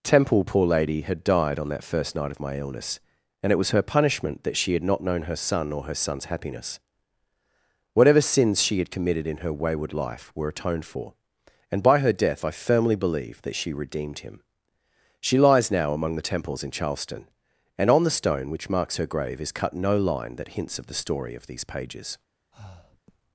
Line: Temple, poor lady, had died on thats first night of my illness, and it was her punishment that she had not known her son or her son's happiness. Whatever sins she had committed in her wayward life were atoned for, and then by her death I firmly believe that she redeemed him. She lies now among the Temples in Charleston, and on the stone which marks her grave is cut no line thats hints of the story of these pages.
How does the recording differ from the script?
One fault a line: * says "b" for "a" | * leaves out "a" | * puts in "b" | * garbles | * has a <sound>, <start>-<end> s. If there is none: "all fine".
* says "that" for "thats"
* leaves out "then"
* says "that" for "thats"
* has a breath, 22.5-23.0 s